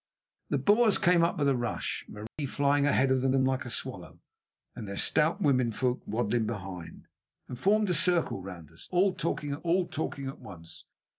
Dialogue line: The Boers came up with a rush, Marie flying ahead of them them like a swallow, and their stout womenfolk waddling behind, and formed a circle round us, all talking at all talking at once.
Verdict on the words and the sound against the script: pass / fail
fail